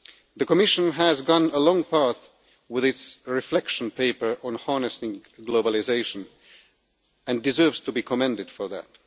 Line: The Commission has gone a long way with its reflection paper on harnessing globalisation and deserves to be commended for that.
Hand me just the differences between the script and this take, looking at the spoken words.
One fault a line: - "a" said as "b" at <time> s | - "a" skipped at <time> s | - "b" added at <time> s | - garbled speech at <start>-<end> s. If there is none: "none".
none